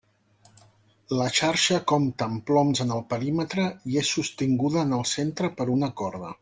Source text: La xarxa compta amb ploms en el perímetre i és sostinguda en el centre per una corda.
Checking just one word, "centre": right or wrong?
right